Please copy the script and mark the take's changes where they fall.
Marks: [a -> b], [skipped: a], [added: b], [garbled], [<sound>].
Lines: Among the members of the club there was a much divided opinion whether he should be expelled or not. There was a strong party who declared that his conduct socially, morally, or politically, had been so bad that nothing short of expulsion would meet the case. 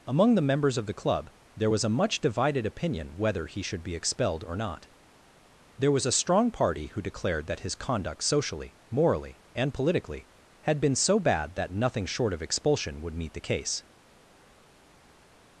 Among the members of the club there was a much divided opinion whether he should be expelled or not. There was a strong party who declared that his conduct socially, morally, [or -> and] politically, had been so bad that nothing short of expulsion would meet the case.